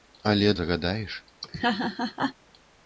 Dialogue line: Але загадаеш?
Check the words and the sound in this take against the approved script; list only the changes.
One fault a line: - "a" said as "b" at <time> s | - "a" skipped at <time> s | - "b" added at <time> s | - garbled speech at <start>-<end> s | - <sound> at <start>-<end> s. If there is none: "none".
- laugh at 1.4-2.3 s